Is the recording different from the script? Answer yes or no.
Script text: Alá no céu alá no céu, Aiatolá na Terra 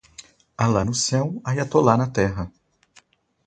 yes